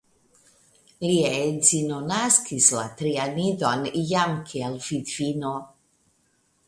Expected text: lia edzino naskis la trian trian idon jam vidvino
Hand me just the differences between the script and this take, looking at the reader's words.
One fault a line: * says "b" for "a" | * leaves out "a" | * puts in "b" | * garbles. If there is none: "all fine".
* leaves out "trian"
* puts in "kiel"